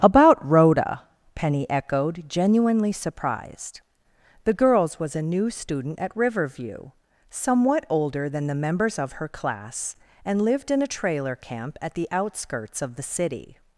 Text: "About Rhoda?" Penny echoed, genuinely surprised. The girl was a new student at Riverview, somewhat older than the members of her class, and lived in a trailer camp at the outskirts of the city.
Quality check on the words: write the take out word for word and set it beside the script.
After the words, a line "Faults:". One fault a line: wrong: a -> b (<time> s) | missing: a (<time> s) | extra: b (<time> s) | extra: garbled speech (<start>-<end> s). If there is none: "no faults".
"About Rhoda?" Penny echoed, genuinely surprised. The girls was a new student at Riverview, somewhat older than the members of her class, and lived in a trailer camp at the outskirts of the city.
Faults:
wrong: girl -> girls (4.5 s)